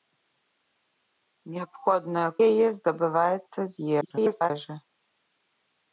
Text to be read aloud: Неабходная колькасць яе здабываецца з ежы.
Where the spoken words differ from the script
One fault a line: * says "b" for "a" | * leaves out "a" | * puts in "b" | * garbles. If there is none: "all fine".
* leaves out "колькасць"
* garbles